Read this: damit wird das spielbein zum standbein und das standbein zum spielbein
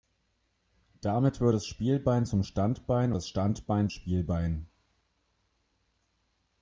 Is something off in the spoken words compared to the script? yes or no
yes